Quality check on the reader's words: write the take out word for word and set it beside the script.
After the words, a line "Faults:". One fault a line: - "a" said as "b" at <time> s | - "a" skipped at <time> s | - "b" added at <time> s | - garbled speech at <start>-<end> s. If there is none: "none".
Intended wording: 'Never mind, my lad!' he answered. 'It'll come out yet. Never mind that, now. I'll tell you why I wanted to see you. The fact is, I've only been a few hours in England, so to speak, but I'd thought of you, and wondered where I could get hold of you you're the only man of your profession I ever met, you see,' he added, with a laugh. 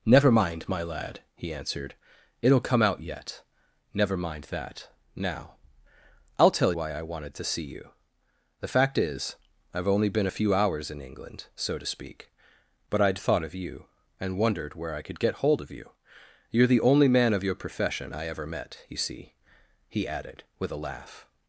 'Never mind, my lad!' he answered. 'It'll come out yet. Never mind that, now. I'll tell why I wanted to see you. The fact is, I've only been a few hours in England, so to speak, but I'd thought of you, and wondered where I could get hold of you you're the only man of your profession I ever met, you see,' he added, with a laugh.
Faults:
- "you" skipped at 6.7 s